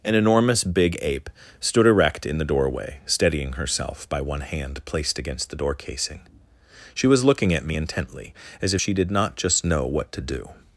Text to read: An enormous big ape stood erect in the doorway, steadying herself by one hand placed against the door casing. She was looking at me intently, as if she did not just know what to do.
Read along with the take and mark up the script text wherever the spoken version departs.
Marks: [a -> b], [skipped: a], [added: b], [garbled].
An enormous big ape stood erect in the doorway, steadying herself by one hand placed against the door casing. She was looking at me intently, as if she did not just know what to do.